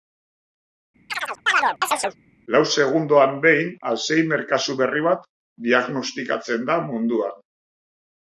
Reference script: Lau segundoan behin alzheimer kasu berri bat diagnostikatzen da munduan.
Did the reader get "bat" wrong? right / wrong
right